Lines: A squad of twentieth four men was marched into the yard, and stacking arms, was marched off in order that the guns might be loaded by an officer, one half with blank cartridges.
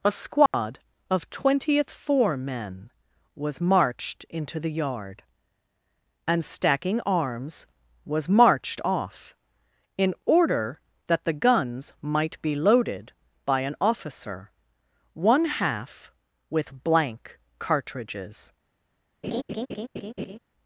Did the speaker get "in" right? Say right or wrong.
right